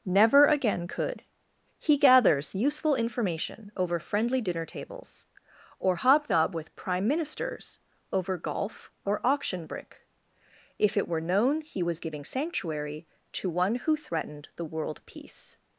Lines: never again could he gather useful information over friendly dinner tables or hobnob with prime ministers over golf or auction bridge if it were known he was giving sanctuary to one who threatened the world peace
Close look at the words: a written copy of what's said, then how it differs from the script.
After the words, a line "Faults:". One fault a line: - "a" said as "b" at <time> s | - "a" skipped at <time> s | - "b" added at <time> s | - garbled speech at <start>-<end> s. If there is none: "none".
never again could he gathers useful information over friendly dinner tables or hobnob with prime ministers over golf or auction brick if it were known he was giving sanctuary to one who threatened the world peace
Faults:
- "gather" said as "gathers" at 2.0 s
- "bridge" said as "brick" at 9.7 s